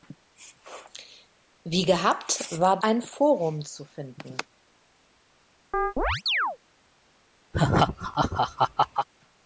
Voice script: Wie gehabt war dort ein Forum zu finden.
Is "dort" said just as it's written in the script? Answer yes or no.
no